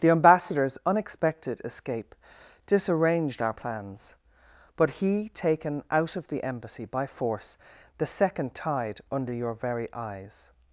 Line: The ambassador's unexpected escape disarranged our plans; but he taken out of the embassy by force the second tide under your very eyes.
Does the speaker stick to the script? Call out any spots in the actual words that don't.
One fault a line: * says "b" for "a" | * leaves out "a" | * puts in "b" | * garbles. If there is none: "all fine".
all fine